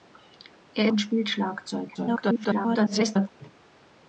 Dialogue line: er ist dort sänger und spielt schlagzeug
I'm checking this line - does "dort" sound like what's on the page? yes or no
no